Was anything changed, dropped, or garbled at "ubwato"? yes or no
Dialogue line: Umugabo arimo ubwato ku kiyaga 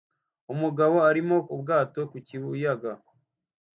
no